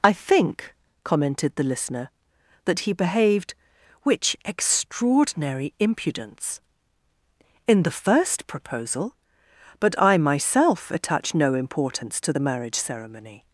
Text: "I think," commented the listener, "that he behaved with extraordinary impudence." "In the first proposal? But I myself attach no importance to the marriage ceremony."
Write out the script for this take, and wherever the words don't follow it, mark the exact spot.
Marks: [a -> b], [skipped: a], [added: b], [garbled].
"I think," commented the listener, "that he behaved [with -> which] extraordinary impudence." "In the first proposal? But I myself attach no importance to the marriage ceremony."